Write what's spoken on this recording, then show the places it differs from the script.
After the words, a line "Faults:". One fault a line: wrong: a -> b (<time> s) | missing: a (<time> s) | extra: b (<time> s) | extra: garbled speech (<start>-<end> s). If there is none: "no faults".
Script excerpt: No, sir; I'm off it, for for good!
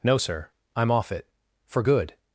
No, sir; I'm off it, for good!
Faults:
missing: for (1.8 s)